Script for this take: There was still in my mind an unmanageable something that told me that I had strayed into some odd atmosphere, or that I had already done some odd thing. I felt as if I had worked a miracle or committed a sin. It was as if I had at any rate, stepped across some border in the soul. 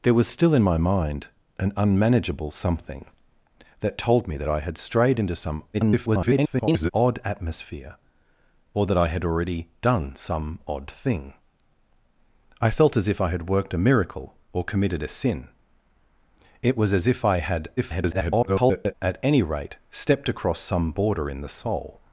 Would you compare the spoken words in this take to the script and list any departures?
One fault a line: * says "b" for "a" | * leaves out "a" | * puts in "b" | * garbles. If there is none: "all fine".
* garbles
* garbles